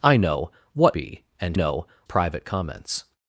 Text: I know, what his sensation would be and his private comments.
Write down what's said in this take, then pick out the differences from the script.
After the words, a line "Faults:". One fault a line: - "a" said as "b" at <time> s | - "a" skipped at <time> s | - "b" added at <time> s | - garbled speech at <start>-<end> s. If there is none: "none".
I know, what be and know private comments.
Faults:
- "his sensation would" skipped at 1.0 s
- "his" said as "know" at 1.5 s